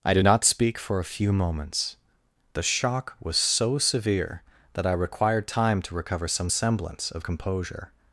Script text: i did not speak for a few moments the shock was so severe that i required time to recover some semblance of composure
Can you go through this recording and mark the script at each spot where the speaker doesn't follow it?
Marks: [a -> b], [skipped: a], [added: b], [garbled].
i did not speak for a few moments the shock was so severe that i required time to recover some semblance of composure